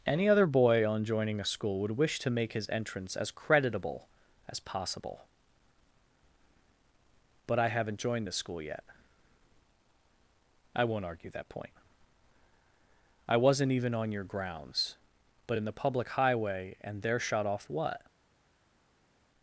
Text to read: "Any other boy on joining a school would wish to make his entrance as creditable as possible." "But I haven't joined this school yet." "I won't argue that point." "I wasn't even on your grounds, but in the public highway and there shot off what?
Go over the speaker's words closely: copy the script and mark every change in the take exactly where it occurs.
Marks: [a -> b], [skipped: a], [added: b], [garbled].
"Any other boy on joining a school would wish to make his entrance as creditable as possible." "But I haven't joined this school yet." "I won't argue that point." "I wasn't even on your grounds, but in the public highway and there shot off what?